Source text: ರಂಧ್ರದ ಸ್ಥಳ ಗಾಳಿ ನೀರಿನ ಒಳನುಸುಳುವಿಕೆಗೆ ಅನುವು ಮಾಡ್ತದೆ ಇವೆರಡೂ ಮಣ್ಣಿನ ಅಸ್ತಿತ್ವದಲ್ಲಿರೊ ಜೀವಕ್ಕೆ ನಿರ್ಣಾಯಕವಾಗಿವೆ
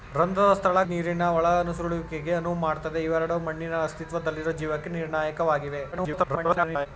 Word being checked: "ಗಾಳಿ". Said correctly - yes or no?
no